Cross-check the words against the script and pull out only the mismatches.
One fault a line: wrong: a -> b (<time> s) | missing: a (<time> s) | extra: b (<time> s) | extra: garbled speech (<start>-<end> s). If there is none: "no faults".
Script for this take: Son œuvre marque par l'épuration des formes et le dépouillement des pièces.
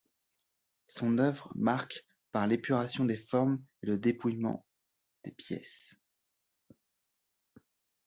no faults